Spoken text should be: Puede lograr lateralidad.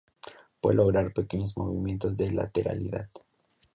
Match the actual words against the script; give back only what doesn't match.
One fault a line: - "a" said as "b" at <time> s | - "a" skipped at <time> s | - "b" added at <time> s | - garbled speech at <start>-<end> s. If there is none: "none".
- "pequeños movimientos de" added at 1.1 s